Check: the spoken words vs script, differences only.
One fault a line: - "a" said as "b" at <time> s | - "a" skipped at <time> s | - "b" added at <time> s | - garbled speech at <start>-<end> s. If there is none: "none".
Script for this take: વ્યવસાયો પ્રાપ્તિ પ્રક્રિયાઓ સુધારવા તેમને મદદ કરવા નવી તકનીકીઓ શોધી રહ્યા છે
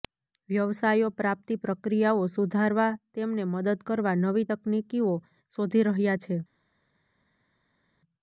none